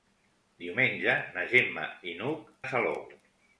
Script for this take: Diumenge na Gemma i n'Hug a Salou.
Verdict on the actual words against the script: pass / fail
pass